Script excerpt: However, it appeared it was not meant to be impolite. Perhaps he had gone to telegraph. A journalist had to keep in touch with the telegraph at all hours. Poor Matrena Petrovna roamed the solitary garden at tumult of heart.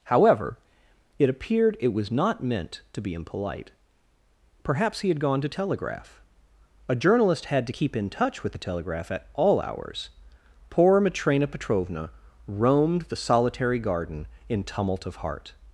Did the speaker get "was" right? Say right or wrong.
right